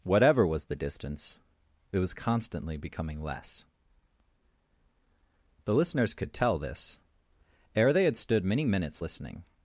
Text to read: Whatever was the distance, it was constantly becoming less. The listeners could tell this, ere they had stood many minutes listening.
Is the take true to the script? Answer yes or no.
yes